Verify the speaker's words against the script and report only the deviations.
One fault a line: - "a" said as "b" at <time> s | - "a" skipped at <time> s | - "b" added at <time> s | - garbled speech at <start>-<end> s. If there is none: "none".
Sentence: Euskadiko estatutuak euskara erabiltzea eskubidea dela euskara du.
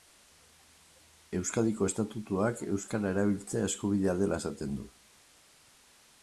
- "euskara" said as "esaten" at 4.4 s